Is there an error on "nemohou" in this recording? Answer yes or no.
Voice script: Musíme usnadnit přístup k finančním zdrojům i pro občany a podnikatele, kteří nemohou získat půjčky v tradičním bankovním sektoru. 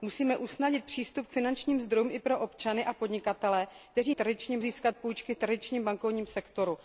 yes